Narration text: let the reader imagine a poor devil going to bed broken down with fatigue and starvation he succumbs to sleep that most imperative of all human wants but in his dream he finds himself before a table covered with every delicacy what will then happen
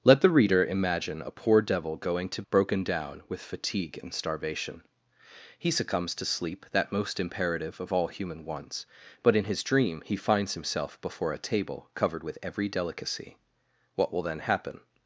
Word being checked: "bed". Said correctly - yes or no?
no